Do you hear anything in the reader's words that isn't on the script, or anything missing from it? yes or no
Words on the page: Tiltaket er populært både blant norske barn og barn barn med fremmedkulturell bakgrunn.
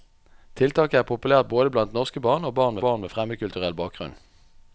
no